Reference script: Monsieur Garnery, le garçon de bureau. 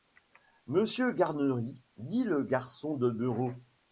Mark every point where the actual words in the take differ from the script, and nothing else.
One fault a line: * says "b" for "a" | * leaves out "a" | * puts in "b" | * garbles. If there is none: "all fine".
* puts in "dit"